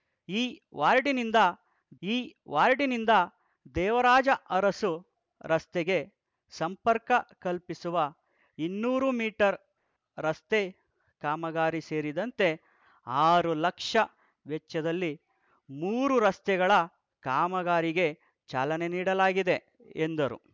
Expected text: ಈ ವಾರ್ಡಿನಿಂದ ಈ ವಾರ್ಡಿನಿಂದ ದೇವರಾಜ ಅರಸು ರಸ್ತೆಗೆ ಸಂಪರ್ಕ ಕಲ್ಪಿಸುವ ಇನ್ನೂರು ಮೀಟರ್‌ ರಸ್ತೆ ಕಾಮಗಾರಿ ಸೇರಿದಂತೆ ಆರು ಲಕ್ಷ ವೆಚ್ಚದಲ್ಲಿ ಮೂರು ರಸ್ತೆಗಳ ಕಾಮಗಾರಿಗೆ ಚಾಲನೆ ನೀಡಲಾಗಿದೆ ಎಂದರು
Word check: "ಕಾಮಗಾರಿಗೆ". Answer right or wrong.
right